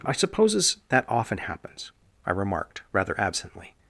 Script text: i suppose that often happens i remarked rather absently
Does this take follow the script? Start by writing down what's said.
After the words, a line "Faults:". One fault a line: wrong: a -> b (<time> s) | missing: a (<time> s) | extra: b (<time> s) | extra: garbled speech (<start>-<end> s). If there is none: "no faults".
i supposes that often happens i remarked rather absently
Faults:
wrong: suppose -> supposes (0.1 s)